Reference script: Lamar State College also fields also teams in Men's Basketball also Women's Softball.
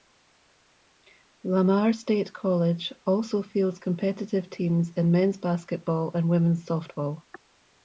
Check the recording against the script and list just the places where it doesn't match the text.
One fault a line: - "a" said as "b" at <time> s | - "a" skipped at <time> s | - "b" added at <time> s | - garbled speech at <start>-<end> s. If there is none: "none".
- "also" said as "competitive" at 3.8 s
- "also" said as "and" at 6.1 s